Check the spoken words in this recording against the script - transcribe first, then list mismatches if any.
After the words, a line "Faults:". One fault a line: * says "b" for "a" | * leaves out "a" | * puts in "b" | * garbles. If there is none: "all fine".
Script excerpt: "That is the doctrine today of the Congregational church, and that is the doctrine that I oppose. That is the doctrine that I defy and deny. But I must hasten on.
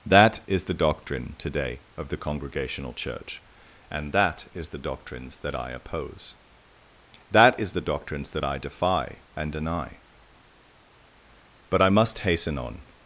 "That is the doctrine today of the Congregational church, and that is the doctrines that I oppose. That is the doctrines that I defy and deny. But I must hasten on.
Faults:
* says "doctrines" for "doctrine"
* says "doctrines" for "doctrine"